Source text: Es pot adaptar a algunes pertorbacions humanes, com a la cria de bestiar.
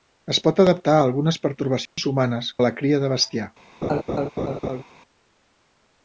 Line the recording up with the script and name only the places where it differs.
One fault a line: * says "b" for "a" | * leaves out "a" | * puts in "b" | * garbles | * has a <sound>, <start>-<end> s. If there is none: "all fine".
* has a dropout, 1.9-2.0 s
* leaves out "com"
* has a laugh, 3.8-4.8 s